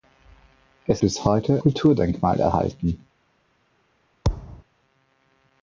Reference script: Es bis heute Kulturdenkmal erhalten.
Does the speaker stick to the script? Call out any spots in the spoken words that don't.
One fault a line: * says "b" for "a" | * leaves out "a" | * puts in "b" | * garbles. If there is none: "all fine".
all fine